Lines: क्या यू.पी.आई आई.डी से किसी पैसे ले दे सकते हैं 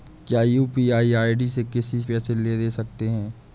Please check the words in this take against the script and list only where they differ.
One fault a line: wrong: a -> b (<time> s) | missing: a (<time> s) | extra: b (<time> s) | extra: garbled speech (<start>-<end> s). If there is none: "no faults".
no faults